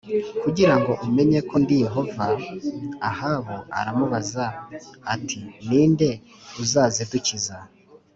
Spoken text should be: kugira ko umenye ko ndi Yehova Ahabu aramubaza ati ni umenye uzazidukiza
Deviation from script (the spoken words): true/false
true